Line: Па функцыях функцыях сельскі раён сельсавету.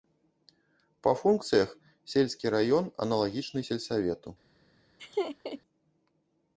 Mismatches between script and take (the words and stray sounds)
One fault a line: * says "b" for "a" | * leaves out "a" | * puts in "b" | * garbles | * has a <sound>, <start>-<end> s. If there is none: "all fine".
* leaves out "функцыях"
* puts in "аналагічны"
* has a laugh, 5.0-5.6 s